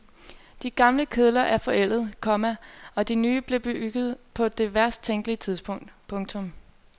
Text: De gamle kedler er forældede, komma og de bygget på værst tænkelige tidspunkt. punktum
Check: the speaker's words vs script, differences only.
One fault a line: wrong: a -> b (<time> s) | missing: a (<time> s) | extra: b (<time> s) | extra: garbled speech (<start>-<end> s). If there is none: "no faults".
extra: nye blev (3.1 s)
extra: det (4.5 s)